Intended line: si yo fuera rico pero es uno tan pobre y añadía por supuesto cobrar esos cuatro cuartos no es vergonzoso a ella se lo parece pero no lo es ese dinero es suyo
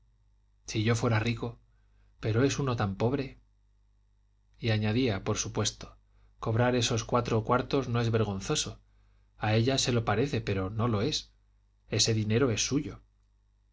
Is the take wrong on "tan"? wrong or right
right